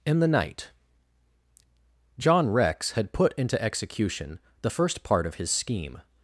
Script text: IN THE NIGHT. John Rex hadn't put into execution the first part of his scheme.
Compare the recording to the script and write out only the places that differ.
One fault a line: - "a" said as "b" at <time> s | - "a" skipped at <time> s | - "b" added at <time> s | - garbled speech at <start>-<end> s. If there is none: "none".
- "hadn't" said as "had" at 2.9 s